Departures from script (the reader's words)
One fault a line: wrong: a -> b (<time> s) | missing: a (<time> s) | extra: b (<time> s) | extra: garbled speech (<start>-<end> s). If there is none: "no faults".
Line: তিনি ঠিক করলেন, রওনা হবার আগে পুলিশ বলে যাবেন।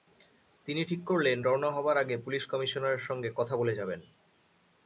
extra: কমিশনারের সঙ্গে কথা (2.5 s)